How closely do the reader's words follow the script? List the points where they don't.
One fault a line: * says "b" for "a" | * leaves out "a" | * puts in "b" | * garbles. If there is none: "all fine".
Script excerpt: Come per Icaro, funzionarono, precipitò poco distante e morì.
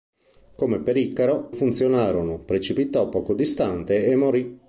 all fine